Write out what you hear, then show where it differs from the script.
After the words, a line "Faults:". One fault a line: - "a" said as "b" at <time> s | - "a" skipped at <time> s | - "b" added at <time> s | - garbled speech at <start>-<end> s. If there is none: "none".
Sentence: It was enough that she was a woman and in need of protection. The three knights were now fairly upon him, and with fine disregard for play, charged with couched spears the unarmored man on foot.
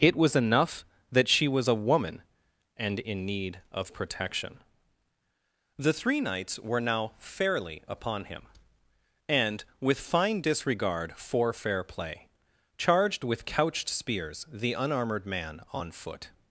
It was enough that she was a woman and in need of protection. The three knights were now fairly upon him, and with fine disregard for fair play, charged with couched spears the unarmored man on foot.
Faults:
- "fair" added at 11.5 s